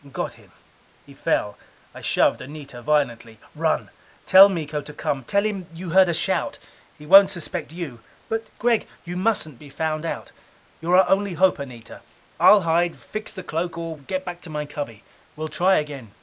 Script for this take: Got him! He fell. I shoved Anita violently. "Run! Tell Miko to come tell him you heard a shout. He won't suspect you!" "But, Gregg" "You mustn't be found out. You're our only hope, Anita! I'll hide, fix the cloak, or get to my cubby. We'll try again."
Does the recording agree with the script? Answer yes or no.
no